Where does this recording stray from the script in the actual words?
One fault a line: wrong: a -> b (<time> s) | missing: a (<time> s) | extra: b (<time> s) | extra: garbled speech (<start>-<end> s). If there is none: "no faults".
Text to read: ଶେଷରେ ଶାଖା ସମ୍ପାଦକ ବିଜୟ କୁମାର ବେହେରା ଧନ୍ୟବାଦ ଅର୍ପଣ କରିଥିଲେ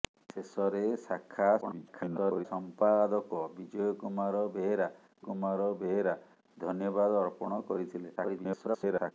extra: garbled speech (1.6-2.5 s)
extra: କୁମାର ବେହେରା (5.3 s)
extra: garbled speech (8.2-9.1 s)